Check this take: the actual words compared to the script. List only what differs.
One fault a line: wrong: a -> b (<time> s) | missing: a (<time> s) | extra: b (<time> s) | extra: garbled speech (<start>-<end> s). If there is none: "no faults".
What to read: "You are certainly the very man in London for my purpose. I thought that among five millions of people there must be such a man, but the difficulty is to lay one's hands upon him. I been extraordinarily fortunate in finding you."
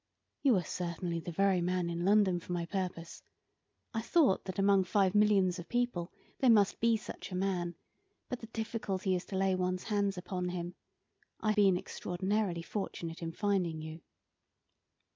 no faults